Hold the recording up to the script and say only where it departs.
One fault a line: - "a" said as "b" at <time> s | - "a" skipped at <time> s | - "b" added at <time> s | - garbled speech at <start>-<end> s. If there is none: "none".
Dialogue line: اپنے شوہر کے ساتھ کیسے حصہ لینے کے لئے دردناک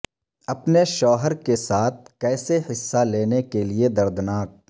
none